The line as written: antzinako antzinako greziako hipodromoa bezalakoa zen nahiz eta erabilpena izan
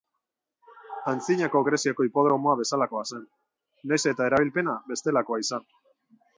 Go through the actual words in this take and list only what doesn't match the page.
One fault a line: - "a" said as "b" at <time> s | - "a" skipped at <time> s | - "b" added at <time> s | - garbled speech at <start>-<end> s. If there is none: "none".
- "antzinako" skipped at 1.6 s
- "bestelakoa" added at 4.9 s